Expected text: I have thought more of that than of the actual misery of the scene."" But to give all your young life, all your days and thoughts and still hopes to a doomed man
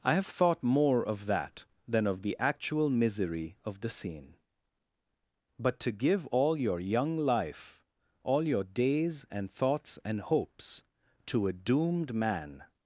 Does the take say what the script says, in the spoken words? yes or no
no